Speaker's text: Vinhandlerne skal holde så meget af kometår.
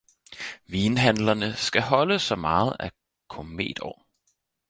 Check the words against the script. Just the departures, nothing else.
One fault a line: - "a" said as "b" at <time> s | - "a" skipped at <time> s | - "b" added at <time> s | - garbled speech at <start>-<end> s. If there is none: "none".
none